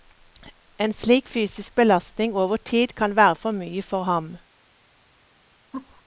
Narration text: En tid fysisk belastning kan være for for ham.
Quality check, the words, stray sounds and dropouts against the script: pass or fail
fail